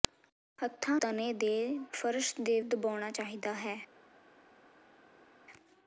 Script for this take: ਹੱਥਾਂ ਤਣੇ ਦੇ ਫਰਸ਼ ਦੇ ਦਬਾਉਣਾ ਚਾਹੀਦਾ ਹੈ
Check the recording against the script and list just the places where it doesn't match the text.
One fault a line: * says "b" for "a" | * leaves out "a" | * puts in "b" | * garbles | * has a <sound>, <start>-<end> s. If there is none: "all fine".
all fine